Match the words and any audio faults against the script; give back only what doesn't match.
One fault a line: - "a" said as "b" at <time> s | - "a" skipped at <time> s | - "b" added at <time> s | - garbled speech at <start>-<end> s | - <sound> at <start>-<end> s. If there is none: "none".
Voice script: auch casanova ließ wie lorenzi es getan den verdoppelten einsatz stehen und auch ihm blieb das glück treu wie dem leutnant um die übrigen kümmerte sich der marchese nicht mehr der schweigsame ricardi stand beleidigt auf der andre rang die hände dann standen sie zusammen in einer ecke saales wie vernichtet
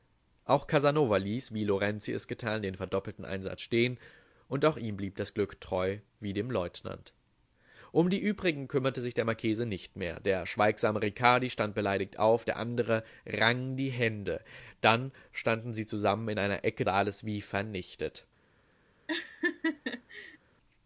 - laugh at 19.1-20.4 s